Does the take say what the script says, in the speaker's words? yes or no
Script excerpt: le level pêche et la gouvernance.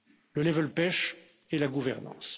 yes